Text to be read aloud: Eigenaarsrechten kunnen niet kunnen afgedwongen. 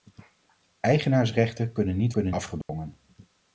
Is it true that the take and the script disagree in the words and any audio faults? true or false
true